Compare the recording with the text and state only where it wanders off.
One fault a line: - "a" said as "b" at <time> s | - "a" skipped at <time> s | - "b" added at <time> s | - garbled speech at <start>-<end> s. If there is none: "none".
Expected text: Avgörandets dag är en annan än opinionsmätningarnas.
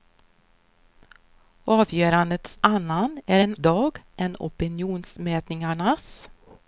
- "dag" said as "annan" at 2.6 s
- "annan" said as "dag" at 3.5 s